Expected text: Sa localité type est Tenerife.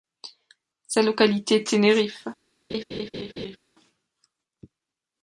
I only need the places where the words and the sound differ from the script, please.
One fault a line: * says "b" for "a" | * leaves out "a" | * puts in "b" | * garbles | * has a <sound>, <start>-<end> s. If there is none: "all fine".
* leaves out "type est"
* has a laugh, 2.7-3.6 s